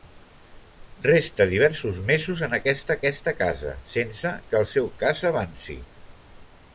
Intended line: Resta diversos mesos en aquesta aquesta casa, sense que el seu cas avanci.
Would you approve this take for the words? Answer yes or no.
yes